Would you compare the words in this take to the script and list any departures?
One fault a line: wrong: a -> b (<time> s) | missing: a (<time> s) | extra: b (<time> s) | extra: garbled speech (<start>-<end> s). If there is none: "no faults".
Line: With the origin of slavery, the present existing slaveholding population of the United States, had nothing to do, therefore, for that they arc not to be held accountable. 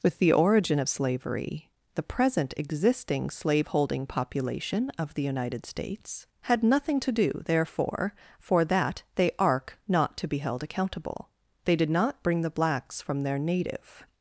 extra: They did not bring the blacks from their native (11.6 s)